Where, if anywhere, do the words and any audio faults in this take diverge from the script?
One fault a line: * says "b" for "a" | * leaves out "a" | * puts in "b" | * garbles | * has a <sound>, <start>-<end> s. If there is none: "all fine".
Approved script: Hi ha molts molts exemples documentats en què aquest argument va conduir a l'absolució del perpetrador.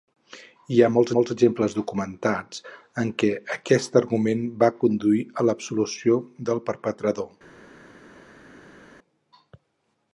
all fine